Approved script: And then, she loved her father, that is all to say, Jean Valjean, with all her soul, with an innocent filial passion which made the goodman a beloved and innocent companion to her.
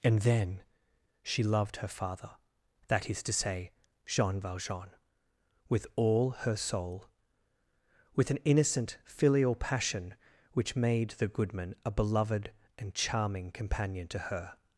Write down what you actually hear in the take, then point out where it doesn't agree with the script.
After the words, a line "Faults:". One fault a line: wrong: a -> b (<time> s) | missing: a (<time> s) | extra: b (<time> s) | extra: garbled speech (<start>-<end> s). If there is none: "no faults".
And then, she loved her father, that is to say, Jean Valjean, with all her soul, with an innocent filial passion which made the goodman a beloved and charming companion to her.
Faults:
missing: all (3.2 s)
wrong: innocent -> charming (12.9 s)